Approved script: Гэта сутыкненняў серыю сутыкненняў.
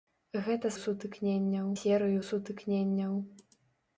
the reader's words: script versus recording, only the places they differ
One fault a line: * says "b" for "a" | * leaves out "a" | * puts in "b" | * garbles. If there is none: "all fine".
all fine